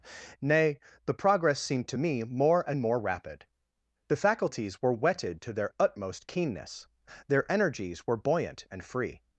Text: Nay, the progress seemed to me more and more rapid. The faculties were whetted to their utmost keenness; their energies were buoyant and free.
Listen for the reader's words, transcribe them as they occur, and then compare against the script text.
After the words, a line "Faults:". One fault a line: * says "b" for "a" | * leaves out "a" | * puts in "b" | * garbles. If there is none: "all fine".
Nay, the progress seemed to me more and more rapid. The faculties were whetted to their utmost keenness; their energies were buoyant and free.
Faults:
all fine